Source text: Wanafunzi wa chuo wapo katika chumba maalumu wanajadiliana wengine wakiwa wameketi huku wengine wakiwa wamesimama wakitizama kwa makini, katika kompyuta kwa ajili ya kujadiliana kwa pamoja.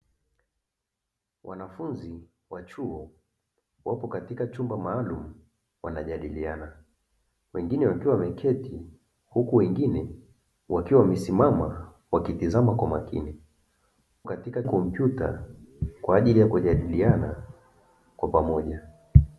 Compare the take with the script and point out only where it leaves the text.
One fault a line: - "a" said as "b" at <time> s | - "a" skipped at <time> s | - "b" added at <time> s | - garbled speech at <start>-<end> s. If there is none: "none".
none